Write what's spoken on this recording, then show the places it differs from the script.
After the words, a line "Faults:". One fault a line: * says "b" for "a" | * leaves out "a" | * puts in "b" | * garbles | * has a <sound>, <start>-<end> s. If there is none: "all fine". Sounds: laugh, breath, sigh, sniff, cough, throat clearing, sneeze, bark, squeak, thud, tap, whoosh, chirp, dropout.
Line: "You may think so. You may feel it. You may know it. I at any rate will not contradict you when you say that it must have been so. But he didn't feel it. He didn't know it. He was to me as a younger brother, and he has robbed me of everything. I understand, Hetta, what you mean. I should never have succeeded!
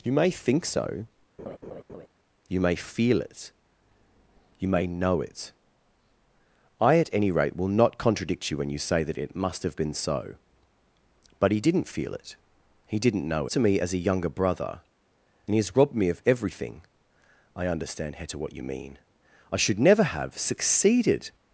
"You may think so. You may feel it. You may know it. I at any rate will not contradict you when you say that it must have been so. But he didn't feel it. He didn't know to me as a younger brother, and he has robbed me of everything. I understand, Hetta, what you mean. I should never have succeeded!
Faults:
* has a laugh, 1.4-2.1 s
* leaves out "it He was"